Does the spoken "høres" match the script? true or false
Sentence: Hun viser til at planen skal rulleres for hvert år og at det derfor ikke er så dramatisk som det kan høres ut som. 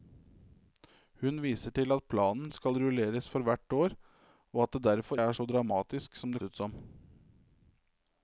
false